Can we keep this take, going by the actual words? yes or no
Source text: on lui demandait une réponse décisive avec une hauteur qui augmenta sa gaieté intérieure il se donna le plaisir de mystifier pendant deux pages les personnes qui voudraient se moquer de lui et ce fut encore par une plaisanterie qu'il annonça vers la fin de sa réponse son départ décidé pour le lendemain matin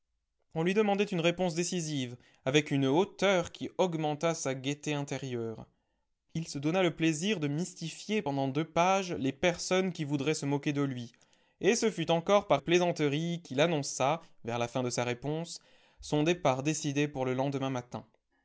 no